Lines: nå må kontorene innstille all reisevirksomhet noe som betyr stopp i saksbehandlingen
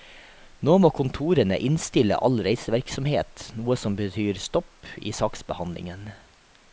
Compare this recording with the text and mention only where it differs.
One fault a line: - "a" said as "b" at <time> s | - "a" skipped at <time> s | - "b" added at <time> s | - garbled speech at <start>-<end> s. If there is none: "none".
none